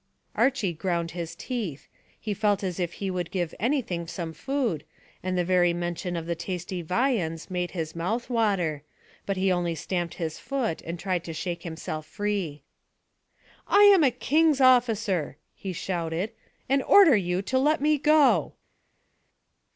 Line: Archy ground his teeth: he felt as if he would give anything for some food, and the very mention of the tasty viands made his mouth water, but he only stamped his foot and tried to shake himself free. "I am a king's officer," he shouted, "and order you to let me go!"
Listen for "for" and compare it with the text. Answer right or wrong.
wrong